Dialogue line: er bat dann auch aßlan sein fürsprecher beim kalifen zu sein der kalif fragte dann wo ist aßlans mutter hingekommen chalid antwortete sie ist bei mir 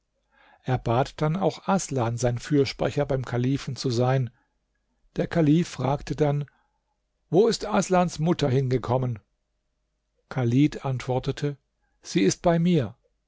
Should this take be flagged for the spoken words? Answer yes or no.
no